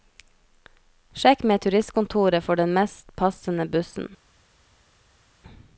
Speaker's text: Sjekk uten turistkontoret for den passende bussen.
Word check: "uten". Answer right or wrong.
wrong